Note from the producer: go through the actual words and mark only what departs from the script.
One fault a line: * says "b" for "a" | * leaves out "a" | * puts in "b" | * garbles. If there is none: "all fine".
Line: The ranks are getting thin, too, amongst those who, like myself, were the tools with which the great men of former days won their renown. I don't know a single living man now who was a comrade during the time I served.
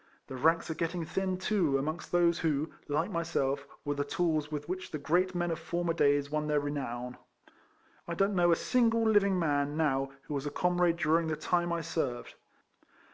all fine